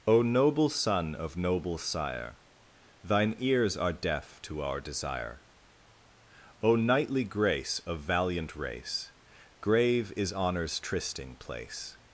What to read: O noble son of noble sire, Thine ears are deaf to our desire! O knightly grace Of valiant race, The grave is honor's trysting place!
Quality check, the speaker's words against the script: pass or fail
fail